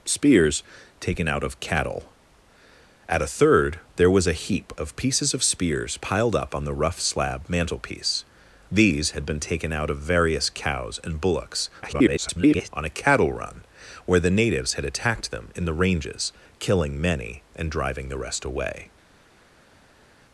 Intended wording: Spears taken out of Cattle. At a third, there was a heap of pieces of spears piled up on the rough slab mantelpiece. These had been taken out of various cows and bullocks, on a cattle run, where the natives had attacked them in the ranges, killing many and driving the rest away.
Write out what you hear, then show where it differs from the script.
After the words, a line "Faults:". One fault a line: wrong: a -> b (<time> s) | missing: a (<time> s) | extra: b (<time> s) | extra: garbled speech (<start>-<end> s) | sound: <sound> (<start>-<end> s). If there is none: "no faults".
Spears taken out of Cattle. At a third, there was a heap of pieces of spears piled up on the rough slab mantelpiece. These had been taken out of various cows and bullocks, [garbled] on a cattle run, where the natives had attacked them in the ranges, killing many and driving the rest away.
Faults:
extra: garbled speech (11.8-12.7 s)